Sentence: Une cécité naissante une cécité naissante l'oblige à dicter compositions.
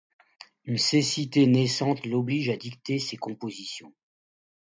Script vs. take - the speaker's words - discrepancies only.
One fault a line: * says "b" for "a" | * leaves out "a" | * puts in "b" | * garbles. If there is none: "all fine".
* leaves out "une cécité naissante"
* puts in "ses"